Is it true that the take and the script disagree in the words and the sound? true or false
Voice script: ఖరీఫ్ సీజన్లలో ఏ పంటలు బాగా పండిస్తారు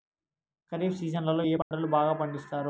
true